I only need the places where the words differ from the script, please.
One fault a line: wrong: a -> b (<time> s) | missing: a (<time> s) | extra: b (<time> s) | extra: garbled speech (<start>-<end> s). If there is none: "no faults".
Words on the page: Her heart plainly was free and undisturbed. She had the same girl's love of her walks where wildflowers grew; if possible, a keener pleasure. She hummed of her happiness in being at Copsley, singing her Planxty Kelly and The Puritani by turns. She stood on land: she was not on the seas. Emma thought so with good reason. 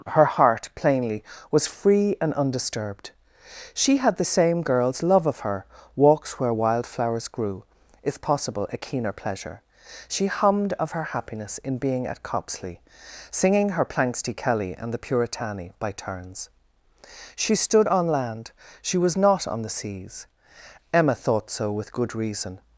no faults